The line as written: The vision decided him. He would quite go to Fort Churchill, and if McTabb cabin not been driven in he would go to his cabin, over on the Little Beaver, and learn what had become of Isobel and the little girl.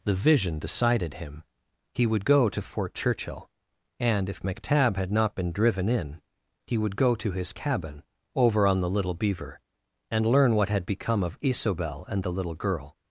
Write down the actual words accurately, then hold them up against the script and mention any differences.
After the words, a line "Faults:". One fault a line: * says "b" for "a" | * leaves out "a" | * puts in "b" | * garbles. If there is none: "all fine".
The vision decided him. He would go to Fort Churchill, and if McTabb had not been driven in he would go to his cabin, over on the Little Beaver, and learn what had become of Isobel and the little girl.
Faults:
* leaves out "quite"
* says "had" for "cabin"